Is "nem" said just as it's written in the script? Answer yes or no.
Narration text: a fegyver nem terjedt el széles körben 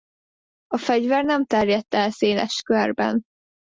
yes